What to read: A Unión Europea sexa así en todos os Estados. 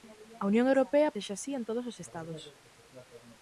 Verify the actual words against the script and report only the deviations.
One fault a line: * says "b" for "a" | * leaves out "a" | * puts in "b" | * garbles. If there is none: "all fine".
all fine